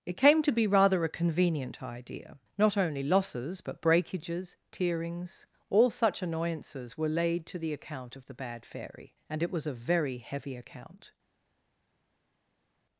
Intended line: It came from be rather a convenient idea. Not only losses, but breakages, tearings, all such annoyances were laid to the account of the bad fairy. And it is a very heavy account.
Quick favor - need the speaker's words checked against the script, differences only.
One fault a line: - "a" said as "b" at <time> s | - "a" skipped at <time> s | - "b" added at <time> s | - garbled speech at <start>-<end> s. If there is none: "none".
- "from" said as "to" at 0.4 s
- "is" said as "was" at 9.5 s